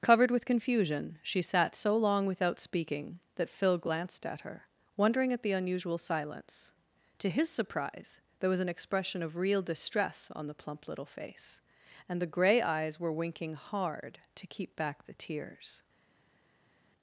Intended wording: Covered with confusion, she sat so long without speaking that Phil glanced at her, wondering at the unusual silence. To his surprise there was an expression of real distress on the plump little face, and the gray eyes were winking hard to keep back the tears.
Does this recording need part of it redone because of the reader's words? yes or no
no